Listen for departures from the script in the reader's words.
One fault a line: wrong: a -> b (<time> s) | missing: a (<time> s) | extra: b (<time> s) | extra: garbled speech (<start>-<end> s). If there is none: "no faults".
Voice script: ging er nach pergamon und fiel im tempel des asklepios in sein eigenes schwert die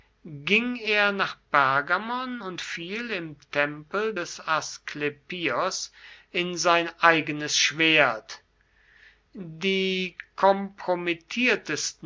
no faults